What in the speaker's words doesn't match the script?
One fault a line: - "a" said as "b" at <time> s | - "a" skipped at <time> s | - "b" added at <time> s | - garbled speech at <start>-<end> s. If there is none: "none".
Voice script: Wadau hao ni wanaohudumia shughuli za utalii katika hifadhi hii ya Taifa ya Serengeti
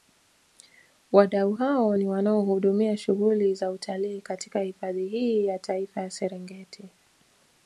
none